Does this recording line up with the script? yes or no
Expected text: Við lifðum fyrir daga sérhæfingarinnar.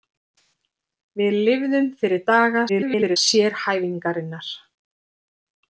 no